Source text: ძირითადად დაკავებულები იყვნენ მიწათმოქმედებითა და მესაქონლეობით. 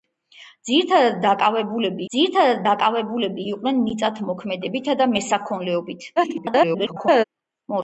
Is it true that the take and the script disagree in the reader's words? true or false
true